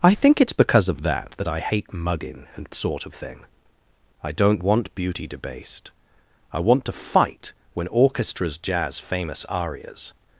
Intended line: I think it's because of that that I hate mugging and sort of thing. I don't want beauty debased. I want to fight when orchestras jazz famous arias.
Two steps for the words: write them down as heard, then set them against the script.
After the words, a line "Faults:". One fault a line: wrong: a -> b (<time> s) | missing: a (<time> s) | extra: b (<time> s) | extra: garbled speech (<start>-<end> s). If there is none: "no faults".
I think it's because of that that I hate mugging and sort of thing. I don't want beauty debased. I want to fight when orchestras jazz famous arias.
Faults:
no faults